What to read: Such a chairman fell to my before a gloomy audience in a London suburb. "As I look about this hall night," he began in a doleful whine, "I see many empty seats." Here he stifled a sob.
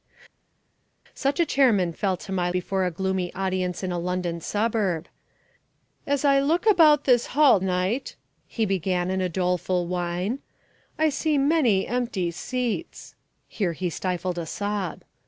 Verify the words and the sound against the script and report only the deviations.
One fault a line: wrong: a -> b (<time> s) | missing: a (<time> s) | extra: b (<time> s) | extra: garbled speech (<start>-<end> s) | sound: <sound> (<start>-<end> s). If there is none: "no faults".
no faults